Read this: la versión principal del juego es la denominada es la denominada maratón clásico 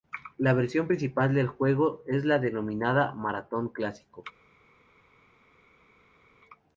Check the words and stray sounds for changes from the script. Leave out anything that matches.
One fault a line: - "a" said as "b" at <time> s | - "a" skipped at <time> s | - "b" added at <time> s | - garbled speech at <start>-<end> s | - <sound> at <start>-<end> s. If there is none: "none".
- "es la denominada" skipped at 3.1 s